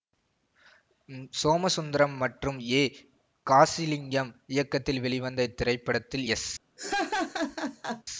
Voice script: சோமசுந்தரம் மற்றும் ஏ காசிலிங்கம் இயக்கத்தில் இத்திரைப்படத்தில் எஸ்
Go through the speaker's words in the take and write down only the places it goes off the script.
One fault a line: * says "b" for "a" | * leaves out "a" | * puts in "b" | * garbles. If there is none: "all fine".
* puts in "வெளிவந்த"